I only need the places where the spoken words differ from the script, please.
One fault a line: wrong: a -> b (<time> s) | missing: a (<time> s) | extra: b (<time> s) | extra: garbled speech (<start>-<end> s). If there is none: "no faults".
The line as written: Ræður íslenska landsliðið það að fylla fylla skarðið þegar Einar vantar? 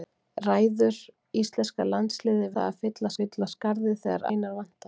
no faults